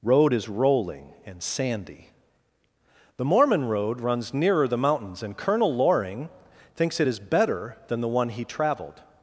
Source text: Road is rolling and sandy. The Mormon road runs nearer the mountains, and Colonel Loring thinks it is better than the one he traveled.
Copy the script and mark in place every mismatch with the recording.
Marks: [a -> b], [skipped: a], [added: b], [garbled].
Road is rolling and sandy. The Mormon road runs nearer the mountains, and Colonel Loring thinks it is better than the one he traveled.